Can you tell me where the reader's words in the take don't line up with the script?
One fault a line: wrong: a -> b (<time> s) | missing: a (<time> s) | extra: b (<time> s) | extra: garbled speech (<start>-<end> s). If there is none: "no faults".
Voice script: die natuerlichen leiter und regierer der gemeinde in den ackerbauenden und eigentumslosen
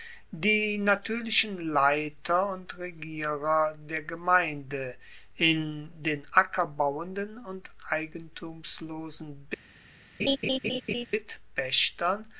no faults